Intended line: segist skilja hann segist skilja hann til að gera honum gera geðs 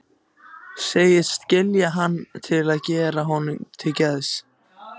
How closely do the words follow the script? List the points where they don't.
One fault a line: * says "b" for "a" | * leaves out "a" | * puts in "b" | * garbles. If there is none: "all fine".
* leaves out "segist skilja hann"
* says "til" for "gera"